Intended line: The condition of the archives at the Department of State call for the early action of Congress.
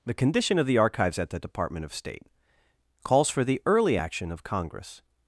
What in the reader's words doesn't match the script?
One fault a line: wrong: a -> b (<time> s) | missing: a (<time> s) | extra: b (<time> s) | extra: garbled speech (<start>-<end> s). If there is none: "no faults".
wrong: call -> calls (3.0 s)